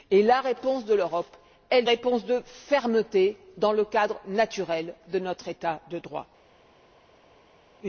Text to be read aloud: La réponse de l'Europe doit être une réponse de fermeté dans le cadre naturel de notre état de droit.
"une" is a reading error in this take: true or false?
true